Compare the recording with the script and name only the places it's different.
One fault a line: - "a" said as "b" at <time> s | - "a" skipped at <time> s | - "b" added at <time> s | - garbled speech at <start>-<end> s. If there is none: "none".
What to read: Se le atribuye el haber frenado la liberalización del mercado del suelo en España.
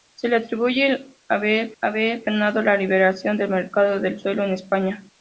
- "haber" added at 1.8 s